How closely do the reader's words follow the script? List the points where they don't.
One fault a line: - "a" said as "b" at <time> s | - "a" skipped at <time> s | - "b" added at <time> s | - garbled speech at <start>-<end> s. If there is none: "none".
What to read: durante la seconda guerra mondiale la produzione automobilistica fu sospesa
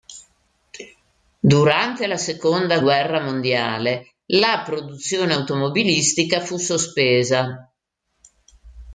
none